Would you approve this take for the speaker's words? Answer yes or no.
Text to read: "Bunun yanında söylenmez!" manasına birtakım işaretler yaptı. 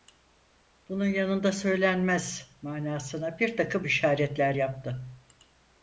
yes